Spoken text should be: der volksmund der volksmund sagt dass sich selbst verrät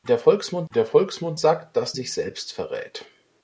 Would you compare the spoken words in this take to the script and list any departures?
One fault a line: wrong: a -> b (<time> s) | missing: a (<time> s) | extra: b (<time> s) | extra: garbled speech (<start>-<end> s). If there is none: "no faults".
no faults